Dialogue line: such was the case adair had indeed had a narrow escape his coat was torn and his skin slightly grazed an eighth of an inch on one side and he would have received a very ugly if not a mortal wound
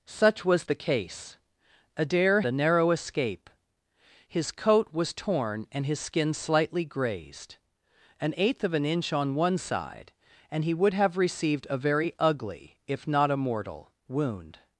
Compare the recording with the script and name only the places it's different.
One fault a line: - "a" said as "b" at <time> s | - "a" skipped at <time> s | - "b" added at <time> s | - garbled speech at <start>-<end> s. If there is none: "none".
- "had indeed had" skipped at 2.4 s